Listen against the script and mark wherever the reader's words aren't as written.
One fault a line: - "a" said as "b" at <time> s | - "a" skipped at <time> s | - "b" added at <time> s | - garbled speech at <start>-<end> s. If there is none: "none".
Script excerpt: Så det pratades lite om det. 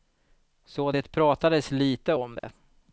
none